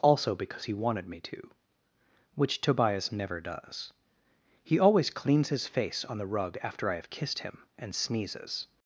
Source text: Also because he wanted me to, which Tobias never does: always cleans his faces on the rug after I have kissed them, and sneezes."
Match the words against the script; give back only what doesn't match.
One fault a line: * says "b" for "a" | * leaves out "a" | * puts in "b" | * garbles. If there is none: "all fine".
* puts in "he"
* says "face" for "faces"
* says "him" for "them"